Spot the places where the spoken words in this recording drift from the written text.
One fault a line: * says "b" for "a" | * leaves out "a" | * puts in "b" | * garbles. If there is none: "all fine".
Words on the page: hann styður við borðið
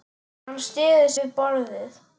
all fine